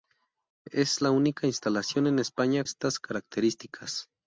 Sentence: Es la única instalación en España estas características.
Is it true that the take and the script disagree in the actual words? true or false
false